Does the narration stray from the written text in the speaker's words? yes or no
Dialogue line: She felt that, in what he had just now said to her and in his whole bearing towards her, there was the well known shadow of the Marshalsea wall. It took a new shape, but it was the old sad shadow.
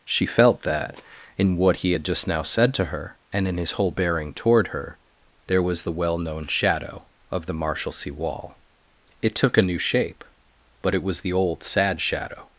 yes